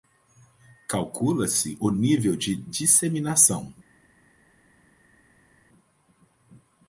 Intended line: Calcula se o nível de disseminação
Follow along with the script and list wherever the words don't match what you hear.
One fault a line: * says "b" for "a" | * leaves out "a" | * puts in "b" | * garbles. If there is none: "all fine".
all fine